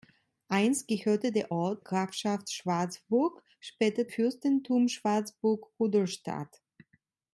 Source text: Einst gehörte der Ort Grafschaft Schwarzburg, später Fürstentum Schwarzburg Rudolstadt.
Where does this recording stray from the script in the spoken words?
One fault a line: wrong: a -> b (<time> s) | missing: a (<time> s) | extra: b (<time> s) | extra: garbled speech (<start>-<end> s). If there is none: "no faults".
no faults